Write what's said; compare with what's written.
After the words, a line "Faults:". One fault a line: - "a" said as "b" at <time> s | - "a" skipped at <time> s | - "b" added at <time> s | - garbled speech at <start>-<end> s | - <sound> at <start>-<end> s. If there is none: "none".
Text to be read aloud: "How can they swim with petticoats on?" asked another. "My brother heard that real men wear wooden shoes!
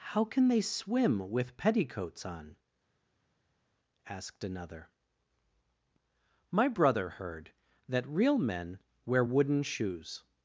"How can they swim with petticoats on?" asked another. "My brother heard that real men wear wooden shoes!
Faults:
none